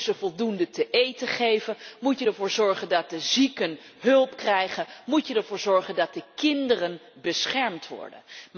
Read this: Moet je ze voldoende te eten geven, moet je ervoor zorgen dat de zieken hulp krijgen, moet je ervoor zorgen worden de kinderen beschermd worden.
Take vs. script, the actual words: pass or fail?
fail